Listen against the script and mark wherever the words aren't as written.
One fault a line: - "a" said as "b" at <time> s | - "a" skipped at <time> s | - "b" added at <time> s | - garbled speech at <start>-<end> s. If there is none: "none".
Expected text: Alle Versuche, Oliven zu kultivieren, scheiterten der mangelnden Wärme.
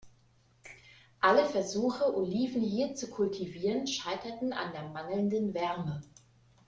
- "hier" added at 2.6 s
- "an" added at 4.5 s